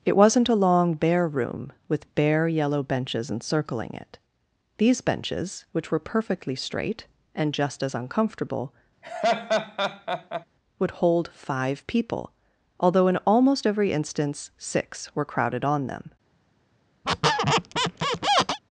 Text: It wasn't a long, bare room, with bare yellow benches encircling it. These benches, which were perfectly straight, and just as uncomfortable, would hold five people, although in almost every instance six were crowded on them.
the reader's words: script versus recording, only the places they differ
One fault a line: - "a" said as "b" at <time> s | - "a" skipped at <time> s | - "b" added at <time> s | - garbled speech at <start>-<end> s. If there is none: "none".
none